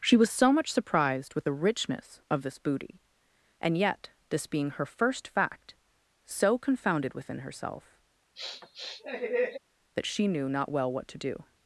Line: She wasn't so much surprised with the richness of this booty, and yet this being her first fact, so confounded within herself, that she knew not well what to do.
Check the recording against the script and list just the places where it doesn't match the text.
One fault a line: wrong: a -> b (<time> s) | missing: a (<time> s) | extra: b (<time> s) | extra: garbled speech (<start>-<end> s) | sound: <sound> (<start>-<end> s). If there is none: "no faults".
wrong: wasn't -> was (0.2 s)
sound: sniff (8.3-9.6 s)